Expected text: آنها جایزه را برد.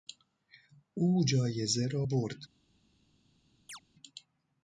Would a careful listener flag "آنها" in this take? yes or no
yes